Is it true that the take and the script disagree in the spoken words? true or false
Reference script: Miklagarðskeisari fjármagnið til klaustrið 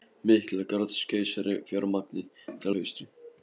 false